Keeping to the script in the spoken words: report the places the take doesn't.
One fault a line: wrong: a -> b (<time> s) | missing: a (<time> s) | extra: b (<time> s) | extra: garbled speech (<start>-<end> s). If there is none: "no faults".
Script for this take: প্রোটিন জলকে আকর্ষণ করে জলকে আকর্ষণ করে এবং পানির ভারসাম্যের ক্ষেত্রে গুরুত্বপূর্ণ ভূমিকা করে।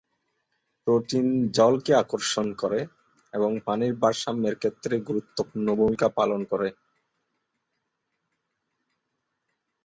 missing: জলকে আকর্ষণ করে (2.8 s)
extra: পালন (6.2 s)